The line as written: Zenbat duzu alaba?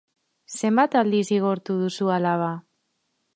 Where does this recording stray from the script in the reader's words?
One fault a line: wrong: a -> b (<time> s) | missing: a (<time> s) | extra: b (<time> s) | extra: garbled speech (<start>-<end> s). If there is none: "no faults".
extra: aldiz zigortu (1.0 s)